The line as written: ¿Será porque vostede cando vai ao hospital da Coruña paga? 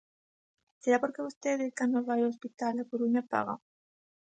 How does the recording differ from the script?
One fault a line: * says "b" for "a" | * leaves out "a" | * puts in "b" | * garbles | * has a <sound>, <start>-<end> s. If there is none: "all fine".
all fine